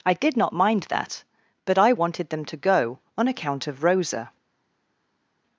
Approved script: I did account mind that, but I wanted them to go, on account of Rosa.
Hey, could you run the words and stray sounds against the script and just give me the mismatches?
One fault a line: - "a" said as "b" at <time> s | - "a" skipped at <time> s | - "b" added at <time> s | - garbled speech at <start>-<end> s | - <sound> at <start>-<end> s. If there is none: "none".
- "account" said as "not" at 0.3 s